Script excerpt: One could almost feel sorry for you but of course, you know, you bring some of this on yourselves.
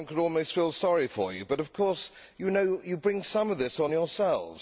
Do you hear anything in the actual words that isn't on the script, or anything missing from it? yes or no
no